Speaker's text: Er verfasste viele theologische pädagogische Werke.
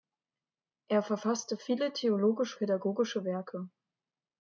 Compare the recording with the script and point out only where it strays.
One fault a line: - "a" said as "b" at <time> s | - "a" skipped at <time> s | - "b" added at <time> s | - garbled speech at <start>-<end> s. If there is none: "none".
none